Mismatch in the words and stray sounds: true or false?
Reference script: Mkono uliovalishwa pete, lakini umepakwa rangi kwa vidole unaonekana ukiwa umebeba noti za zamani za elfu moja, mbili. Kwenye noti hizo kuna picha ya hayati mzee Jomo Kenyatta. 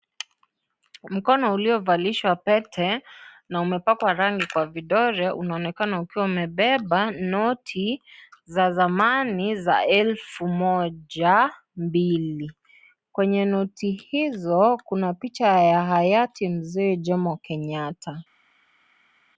true